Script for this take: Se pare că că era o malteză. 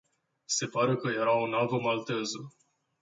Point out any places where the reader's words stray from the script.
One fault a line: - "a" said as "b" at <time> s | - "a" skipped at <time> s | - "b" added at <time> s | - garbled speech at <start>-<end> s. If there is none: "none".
- "că" skipped at 1.1 s
- "navă" added at 1.5 s